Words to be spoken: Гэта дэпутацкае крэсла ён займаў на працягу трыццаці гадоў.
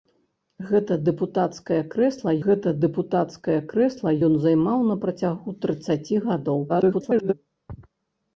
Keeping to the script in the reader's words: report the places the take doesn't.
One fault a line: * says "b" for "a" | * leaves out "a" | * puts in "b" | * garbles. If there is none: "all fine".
* puts in "гэта дэпутацкае крэсла"
* garbles